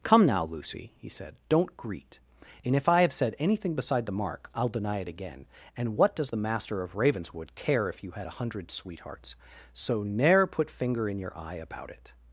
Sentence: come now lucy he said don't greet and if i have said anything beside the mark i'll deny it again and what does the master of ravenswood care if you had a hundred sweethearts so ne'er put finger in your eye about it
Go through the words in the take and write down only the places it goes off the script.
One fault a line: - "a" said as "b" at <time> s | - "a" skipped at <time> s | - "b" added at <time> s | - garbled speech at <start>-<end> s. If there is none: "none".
none